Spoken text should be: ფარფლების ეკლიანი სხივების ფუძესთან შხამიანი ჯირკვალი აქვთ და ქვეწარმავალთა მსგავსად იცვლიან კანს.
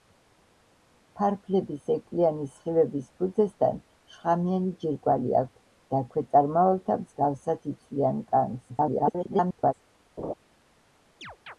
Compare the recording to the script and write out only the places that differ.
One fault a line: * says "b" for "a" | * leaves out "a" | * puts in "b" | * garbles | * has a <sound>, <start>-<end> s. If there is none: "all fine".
* garbles
* has a laugh, 10.2-10.3 s
* has a chirp, 11.2-11.6 s